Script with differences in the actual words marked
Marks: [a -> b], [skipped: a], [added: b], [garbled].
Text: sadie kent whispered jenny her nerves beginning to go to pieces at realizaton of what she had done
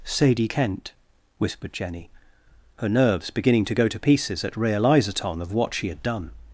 sadie kent whispered jenny her nerves beginning to go to pieces at realizaton of what she had done